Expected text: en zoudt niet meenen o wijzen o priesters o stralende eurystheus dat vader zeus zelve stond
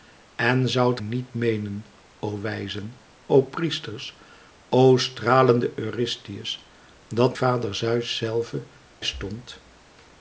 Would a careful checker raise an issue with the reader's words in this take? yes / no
no